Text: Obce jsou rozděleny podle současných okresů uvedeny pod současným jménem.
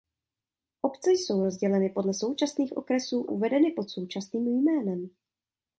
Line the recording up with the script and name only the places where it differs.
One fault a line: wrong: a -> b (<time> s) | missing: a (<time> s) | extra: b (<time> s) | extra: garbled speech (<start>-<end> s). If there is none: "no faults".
no faults